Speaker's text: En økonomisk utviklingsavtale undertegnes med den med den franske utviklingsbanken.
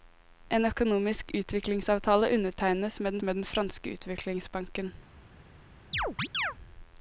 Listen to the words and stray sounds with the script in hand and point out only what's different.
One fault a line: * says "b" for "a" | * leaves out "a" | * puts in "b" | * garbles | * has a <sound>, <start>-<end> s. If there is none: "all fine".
* has a chirp, 5.9-6.5 s